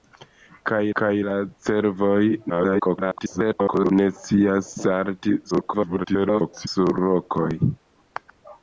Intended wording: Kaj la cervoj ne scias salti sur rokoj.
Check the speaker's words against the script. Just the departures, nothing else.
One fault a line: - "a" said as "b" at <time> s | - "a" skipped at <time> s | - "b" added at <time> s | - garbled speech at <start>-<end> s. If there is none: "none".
- "kaj" added at 1.0 s
- garbled speech at 2.5-3.9 s
- garbled speech at 5.5-6.7 s